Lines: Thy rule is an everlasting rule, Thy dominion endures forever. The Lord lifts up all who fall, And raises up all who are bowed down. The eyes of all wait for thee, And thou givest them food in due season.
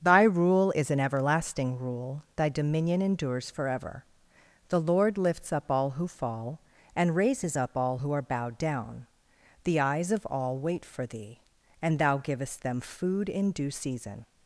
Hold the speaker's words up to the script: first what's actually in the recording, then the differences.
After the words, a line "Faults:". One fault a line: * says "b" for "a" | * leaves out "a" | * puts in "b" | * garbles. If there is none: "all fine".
Thy rule is an everlasting rule, Thy dominion endures forever. The Lord lifts up all who fall, And raises up all who are bowed down. The eyes of all wait for thee, And thou givest them food in due season.
Faults:
all fine